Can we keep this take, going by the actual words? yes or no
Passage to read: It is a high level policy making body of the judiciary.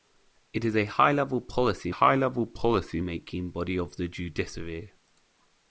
no